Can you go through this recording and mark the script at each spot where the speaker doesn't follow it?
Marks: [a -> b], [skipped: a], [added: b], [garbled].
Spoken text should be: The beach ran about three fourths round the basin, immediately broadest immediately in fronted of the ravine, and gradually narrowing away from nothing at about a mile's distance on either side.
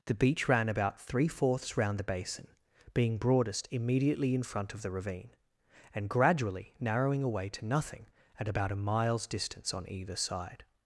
The beach ran about three fourths round the basin, [immediately -> being] broadest immediately in [fronted -> front] of the ravine, and gradually narrowing away [from -> to] nothing at about a mile's distance on either side.